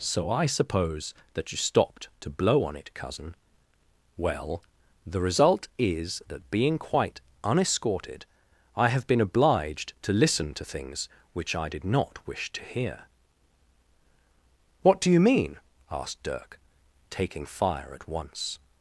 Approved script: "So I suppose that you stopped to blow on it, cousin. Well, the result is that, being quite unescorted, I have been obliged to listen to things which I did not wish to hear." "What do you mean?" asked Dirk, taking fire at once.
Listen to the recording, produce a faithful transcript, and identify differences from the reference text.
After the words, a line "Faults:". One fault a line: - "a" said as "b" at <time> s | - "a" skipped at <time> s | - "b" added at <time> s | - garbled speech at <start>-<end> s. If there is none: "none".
"So I suppose that you stopped to blow on it, cousin. Well, the result is that, being quite unescorted, I have been obliged to listen to things which I did not wish to hear." "What do you mean?" asked Dirk, taking fire at once.
Faults:
none